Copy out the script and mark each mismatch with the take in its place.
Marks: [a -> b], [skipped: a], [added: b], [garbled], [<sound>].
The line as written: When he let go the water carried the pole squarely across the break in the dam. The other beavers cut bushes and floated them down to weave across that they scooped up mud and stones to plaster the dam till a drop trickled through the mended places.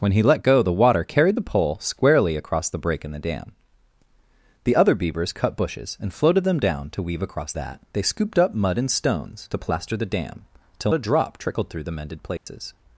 When he let go the water carried the pole squarely across the break in the dam. The other beavers cut bushes and floated them down to weave across that they scooped up mud and stones to plaster the dam till a drop trickled through the mended places. [dropout]